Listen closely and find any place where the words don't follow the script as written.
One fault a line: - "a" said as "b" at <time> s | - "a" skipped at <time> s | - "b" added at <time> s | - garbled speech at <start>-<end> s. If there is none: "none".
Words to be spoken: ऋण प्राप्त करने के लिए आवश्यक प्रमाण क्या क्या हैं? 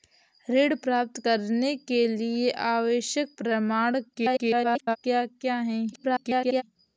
- garbled speech at 4.1-5.0 s
- garbled speech at 5.9-6.6 s